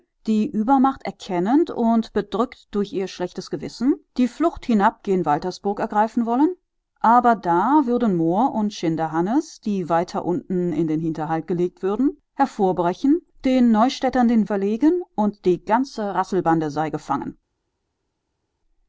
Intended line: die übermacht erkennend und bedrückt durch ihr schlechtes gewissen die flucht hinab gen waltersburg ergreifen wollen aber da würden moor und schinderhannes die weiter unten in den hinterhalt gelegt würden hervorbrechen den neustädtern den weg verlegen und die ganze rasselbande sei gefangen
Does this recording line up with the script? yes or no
no